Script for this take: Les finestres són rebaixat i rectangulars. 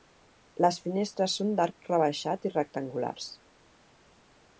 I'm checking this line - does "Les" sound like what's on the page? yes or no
yes